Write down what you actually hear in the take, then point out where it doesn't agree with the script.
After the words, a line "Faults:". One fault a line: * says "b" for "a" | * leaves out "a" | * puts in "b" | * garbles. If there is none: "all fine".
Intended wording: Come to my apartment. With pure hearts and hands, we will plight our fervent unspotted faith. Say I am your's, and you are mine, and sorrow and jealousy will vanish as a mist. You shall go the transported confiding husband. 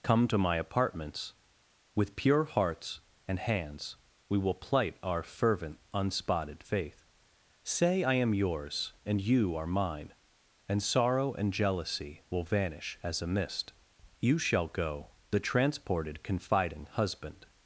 Come to my apartments. With pure hearts and hands, we will plight our fervent unspotted faith. Say I am your's, and you are mine, and sorrow and jealousy will vanish as a mist. You shall go the transported confiding husband.
Faults:
* says "apartments" for "apartment"